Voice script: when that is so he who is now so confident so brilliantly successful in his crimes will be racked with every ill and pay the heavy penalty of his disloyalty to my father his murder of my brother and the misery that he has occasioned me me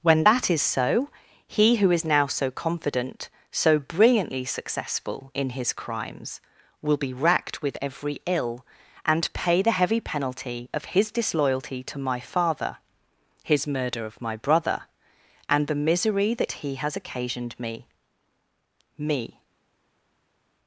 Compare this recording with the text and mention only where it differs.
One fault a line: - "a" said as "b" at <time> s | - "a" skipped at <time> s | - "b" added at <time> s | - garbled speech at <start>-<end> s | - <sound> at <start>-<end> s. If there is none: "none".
none